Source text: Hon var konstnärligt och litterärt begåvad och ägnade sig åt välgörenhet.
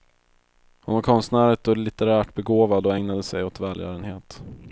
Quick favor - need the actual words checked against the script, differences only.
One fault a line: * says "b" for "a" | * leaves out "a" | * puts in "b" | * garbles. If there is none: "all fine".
all fine